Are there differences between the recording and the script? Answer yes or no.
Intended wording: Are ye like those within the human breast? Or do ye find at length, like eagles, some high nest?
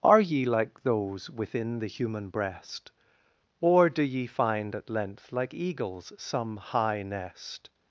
no